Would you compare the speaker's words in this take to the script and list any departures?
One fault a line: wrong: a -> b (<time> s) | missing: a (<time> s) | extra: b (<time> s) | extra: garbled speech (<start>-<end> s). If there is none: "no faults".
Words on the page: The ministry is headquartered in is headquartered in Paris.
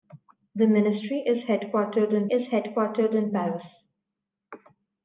no faults